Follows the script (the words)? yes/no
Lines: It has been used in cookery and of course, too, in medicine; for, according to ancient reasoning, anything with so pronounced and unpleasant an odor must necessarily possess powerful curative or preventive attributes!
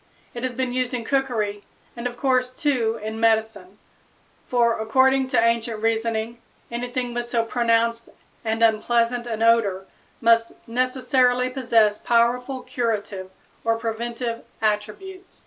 yes